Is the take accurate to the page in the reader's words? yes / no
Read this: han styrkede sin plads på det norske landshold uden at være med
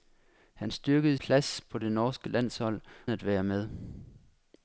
no